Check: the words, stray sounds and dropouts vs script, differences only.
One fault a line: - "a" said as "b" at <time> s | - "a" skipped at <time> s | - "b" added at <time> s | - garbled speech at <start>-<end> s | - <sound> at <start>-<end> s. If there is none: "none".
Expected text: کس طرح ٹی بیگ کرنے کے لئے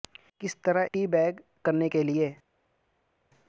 none